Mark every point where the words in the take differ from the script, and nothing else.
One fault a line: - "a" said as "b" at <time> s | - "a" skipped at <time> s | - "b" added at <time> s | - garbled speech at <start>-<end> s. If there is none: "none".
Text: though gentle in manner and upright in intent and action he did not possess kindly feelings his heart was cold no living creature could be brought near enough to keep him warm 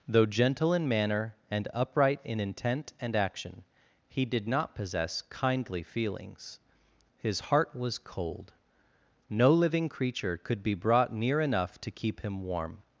none